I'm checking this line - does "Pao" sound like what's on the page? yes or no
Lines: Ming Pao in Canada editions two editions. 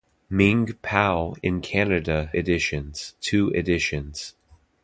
yes